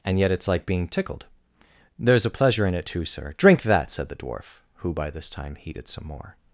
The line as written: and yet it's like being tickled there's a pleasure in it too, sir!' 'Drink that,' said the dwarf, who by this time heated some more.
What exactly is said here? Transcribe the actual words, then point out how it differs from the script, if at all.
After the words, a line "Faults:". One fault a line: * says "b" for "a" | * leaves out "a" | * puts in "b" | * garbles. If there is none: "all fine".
and yet it's like being tickled there's a pleasure in it too, sir!' 'Drink that,' said the dwarf, who by this time heated some more.
Faults:
all fine